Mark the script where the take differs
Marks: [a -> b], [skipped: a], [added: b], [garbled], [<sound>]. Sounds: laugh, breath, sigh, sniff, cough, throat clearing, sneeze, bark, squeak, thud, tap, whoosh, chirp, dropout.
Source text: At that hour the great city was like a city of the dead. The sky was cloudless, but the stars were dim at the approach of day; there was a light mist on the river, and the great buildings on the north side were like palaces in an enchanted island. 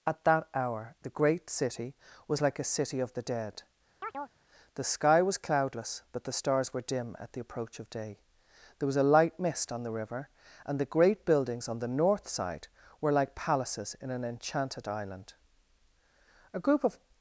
At that hour the great city was like a city of the dead. [chirp] The sky was cloudless, but the stars were dim at the approach of day; there was a light mist on the river, and the great buildings on the north side were like palaces in an enchanted island. [added: A group of]